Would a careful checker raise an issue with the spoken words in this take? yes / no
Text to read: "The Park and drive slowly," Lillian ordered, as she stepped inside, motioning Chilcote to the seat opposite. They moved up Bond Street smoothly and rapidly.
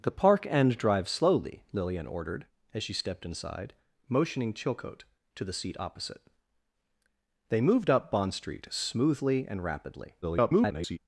yes